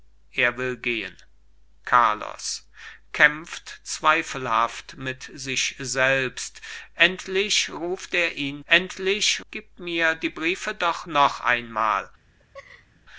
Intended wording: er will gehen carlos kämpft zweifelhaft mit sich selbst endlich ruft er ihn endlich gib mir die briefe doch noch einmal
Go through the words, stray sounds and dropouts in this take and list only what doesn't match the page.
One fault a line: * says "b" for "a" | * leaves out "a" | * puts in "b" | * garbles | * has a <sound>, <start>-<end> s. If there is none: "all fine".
* has a laugh, 12.4-13.0 s